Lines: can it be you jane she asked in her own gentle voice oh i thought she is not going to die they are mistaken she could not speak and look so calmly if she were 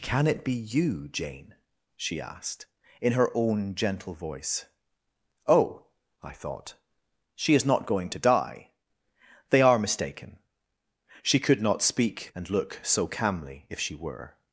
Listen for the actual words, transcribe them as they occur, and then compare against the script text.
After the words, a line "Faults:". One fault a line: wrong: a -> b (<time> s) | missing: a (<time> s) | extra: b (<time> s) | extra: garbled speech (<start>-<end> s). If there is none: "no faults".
can it be you jane she asked in her own gentle voice oh i thought she is not going to die they are mistaken she could not speak and look so calmly if she were
Faults:
no faults